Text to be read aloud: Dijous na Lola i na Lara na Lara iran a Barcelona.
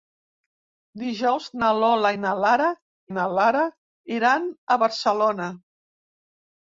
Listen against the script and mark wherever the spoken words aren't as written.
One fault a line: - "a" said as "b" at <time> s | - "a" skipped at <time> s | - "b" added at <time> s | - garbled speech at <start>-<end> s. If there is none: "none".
none